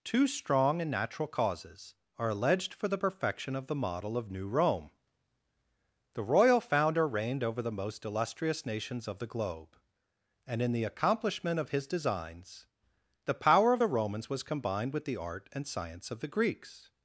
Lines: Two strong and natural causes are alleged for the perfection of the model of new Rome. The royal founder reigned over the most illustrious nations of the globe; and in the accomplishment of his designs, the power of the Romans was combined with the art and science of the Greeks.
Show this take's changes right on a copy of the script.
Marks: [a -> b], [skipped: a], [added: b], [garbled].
Two strong and natural causes are alleged for the perfection of the model of new Rome. The royal founder reigned over the most illustrious nations of the globe; and in the accomplishment of his designs, the power of the Romans was combined with the art and science of the Greeks.